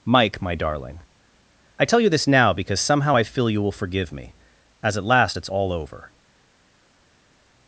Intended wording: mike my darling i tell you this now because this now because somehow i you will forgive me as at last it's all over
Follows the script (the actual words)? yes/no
no